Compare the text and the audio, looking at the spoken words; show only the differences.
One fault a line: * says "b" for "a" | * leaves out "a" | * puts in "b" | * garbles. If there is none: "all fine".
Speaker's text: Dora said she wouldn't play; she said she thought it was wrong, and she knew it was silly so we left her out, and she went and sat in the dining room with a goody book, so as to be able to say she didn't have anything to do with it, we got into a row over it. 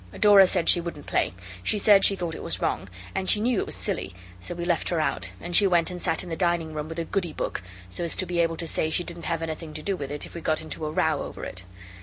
* puts in "if"